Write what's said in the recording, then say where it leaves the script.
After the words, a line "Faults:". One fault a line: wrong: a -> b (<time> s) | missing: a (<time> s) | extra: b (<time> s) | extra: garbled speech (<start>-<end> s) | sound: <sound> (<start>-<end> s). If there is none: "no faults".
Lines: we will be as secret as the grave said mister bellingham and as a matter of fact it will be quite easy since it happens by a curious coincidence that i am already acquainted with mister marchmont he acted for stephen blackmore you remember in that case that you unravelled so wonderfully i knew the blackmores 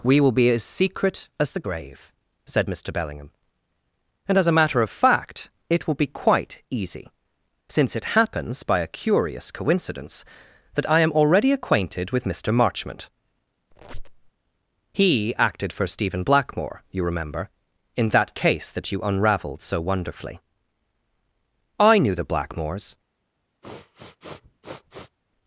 we will be as secret as the grave said mister bellingham and as a matter of fact it will be quite easy since it happens by a curious coincidence that i am already acquainted with mister marchmont he acted for stephen blackmore you remember in that case that you unravelled so wonderfully i knew the blackmores
Faults:
sound: squeak (13.7-14.3 s)
sound: sniff (23.6-25.2 s)